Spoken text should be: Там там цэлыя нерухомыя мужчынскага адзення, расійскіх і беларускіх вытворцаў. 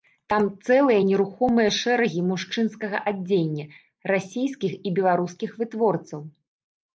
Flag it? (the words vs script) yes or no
yes